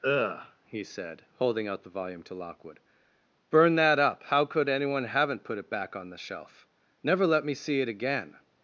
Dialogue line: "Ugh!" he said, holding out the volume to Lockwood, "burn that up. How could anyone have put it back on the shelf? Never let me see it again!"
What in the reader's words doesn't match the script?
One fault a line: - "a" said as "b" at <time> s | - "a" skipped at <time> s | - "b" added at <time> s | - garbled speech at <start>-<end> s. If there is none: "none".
- "have" said as "haven't" at 5.0 s